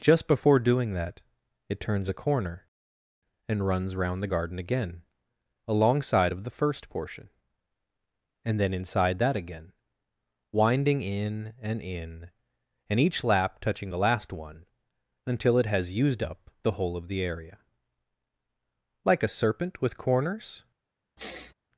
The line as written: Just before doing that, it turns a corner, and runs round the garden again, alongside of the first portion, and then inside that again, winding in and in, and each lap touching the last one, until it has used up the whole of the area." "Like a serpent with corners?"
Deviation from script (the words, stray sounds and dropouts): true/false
true